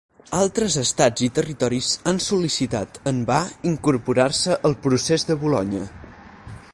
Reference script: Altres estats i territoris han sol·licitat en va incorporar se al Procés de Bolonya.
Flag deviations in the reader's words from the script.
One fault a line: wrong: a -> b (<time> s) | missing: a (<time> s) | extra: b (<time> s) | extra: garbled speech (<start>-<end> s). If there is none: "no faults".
no faults